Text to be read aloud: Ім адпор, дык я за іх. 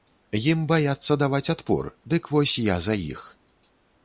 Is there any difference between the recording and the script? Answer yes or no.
yes